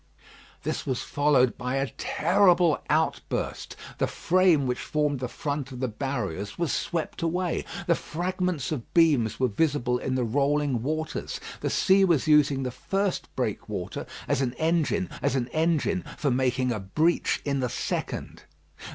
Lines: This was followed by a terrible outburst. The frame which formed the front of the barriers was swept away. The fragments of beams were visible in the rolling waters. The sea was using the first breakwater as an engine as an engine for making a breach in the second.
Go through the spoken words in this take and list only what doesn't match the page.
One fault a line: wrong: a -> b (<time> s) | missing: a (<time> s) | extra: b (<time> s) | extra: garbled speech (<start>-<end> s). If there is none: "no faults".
no faults